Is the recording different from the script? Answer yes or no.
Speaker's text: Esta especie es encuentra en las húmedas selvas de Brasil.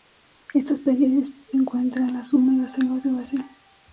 no